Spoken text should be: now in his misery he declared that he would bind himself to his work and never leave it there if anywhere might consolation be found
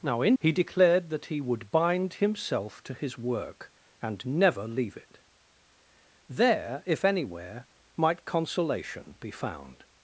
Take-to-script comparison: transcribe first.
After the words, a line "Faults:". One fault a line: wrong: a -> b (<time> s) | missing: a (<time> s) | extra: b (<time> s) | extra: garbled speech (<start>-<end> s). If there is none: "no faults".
now in he declared that he would bind himself to his work and never leave it there if anywhere might consolation be found
Faults:
missing: his misery (0.3 s)